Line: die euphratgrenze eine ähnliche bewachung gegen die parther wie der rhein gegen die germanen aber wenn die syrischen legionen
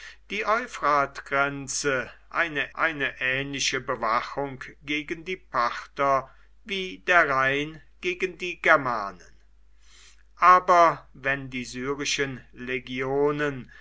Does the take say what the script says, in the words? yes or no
no